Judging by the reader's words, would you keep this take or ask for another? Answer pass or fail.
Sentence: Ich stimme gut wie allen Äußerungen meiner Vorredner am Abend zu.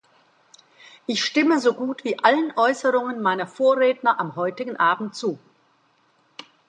fail